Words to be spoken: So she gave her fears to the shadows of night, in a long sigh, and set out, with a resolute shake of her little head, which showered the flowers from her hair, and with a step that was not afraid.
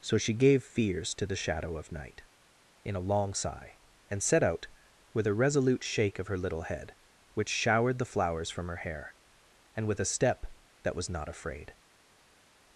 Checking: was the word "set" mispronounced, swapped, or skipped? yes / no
no